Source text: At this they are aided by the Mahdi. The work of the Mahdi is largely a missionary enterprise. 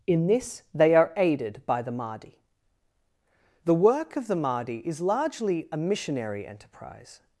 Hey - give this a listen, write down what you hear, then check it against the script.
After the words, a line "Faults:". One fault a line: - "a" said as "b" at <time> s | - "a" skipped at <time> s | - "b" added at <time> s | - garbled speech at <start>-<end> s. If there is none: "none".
In this they are aided by the Mahdi. The work of the Mahdi is largely a missionary enterprise.
Faults:
- "At" said as "In" at 0.1 s